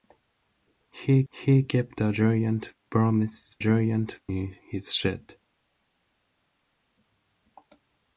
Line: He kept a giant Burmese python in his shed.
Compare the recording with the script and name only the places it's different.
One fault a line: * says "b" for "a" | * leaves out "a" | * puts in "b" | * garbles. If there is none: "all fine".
* puts in "he"
* says "giant" for "python"